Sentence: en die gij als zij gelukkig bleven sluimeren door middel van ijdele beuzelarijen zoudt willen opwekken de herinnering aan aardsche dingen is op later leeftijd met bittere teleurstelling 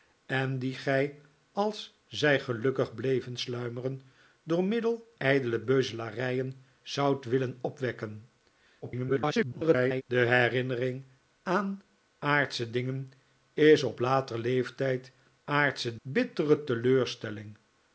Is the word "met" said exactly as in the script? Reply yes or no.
no